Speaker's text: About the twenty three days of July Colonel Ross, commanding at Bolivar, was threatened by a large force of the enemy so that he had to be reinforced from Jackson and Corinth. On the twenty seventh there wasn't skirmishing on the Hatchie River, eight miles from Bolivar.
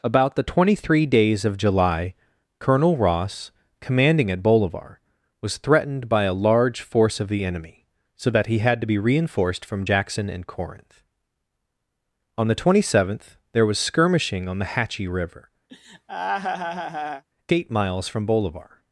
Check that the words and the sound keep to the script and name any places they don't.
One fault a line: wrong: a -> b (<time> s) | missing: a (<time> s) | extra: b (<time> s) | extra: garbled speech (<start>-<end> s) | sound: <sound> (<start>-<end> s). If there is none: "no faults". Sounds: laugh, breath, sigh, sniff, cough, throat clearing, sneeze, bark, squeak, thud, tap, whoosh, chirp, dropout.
wrong: wasn't -> was (13.7 s)
sound: laugh (15.7-17.2 s)